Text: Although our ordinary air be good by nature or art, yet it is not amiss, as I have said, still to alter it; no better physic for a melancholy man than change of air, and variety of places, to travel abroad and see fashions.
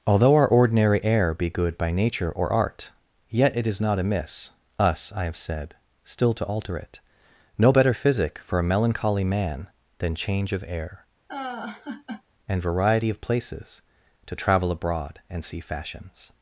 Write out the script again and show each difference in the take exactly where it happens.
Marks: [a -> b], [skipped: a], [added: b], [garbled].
Although our ordinary air be good by nature or art, yet it is not amiss, [as -> us] I have said, still to alter it; no better physic for a melancholy man than change of air, and variety of places, to travel abroad and see fashions.